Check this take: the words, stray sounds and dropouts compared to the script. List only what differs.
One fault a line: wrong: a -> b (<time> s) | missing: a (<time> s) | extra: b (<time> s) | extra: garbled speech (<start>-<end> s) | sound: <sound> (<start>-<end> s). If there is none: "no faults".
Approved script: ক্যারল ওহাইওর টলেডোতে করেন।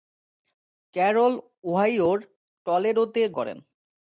no faults